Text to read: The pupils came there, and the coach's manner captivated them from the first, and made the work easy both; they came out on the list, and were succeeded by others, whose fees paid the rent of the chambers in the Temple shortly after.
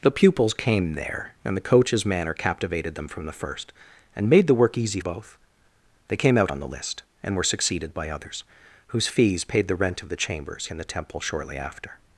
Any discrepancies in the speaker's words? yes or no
no